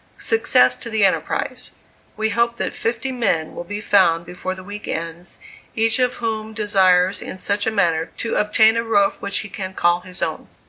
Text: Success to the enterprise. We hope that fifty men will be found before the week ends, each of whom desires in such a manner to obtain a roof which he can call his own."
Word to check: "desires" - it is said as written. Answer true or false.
true